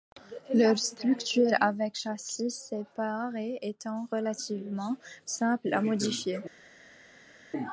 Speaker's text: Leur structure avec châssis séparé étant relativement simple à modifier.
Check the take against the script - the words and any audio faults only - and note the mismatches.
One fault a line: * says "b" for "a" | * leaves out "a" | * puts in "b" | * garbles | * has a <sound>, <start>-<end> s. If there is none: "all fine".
all fine